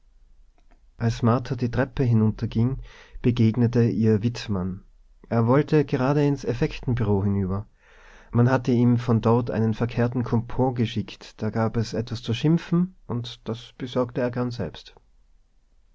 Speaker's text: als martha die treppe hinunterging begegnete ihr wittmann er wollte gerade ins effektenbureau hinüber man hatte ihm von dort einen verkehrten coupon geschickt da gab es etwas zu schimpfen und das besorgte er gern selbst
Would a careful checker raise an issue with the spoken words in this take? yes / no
no